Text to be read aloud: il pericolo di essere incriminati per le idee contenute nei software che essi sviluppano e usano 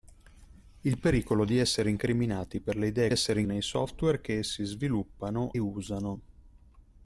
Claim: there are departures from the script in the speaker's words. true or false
true